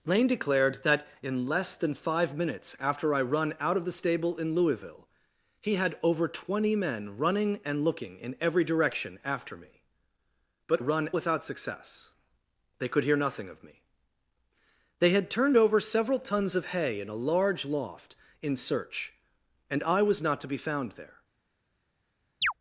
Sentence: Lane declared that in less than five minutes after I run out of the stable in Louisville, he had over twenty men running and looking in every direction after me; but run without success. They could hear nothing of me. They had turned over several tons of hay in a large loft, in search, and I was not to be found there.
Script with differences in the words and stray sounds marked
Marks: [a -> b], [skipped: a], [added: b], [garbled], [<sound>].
Lane declared that in less than five minutes after I run out of the stable in Louisville, he had over twenty men running and looking in every direction after me; but run without success. They could hear nothing of me. They had turned over several tons of hay in a large loft, in search, and I was not to be found there. [chirp]